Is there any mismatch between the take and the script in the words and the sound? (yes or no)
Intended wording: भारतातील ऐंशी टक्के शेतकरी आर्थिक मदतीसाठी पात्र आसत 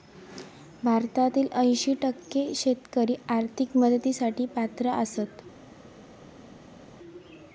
no